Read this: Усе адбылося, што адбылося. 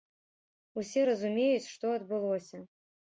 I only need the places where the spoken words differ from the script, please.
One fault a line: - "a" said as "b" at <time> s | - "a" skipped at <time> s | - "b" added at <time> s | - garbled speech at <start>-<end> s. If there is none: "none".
- "адбылося" said as "разумеюць" at 1.1 s